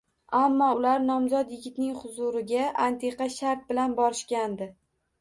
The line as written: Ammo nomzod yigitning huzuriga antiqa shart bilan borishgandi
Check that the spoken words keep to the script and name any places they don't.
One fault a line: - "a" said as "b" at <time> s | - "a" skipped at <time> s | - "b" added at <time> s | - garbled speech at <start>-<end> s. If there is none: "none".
- "ular" added at 0.7 s